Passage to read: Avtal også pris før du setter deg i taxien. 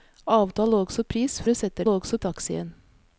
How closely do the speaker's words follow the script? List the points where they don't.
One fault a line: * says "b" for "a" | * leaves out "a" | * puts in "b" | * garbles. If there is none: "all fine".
* leaves out "før"
* says "også" for "deg"